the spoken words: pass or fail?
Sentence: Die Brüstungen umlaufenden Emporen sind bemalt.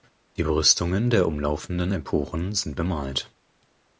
fail